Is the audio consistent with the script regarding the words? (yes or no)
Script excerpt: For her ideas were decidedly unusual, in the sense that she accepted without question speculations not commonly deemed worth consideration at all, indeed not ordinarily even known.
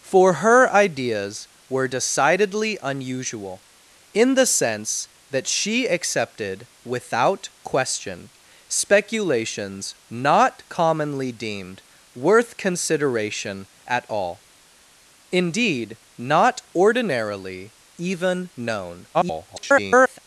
no